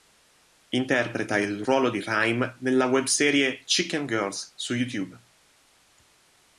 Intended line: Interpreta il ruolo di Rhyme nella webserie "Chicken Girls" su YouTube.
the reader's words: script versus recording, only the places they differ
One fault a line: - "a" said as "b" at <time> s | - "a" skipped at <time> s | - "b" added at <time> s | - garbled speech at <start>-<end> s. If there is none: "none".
none